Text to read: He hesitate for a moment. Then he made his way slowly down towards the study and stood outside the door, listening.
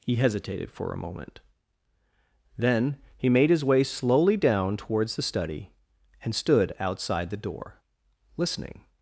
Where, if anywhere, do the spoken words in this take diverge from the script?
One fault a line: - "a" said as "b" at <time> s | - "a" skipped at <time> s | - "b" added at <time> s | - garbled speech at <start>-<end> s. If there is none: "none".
- "hesitate" said as "hesitated" at 0.1 s